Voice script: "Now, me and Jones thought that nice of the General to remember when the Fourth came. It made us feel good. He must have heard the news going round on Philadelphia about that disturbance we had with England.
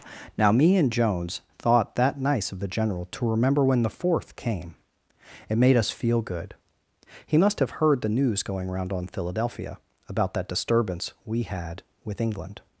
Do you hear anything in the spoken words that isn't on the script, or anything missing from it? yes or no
no